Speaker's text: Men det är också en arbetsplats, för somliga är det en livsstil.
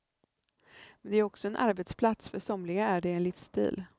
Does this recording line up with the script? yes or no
yes